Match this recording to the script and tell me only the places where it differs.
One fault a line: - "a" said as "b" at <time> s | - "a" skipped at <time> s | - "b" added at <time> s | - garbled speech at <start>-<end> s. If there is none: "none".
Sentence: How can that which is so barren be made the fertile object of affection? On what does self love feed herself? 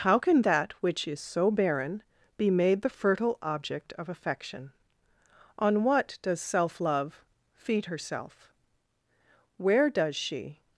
- "Where does she" added at 9.6 s